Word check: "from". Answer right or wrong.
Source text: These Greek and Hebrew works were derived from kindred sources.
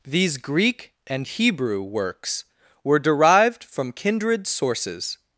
right